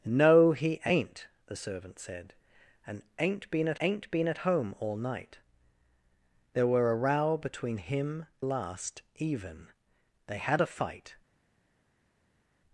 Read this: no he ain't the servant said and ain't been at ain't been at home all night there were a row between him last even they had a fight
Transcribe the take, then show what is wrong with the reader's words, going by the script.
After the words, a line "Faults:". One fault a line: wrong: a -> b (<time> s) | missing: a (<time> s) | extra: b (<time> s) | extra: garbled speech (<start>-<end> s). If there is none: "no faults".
no he ain't the servant said and ain't been at ain't been at home all night there were a row between him last even they had a fight
Faults:
no faults